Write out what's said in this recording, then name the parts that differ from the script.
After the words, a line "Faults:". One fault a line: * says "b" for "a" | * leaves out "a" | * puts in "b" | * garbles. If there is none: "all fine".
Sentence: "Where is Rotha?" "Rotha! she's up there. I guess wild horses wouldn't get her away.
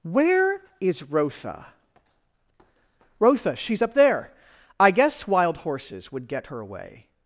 "Where is Rotha?" "Rotha! she's up there. I guess wild horses would get her away.
Faults:
* says "would" for "wouldn't"